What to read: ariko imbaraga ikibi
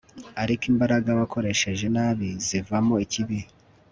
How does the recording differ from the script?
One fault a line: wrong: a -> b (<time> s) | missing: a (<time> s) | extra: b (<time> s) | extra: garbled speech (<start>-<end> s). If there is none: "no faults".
extra: wakoresheje nabi zivamo (1.2 s)